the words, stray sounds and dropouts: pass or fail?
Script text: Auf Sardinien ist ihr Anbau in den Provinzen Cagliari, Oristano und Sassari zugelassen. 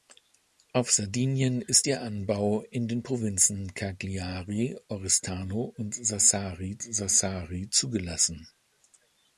fail